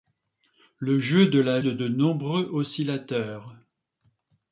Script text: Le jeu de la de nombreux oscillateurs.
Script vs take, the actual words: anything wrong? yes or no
no